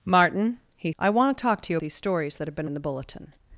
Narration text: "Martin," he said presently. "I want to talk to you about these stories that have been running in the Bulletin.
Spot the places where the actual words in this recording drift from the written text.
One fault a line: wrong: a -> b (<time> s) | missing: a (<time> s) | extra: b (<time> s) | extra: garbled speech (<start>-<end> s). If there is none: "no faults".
missing: said presently (0.9 s)
missing: about (1.8 s)
missing: running (2.7 s)